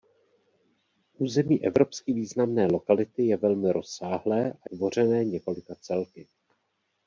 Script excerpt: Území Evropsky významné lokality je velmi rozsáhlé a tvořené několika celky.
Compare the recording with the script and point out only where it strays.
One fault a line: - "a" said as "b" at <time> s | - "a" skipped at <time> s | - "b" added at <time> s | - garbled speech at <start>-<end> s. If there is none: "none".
none